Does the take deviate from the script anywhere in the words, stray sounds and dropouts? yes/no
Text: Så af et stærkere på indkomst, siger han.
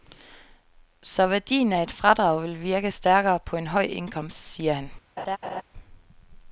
yes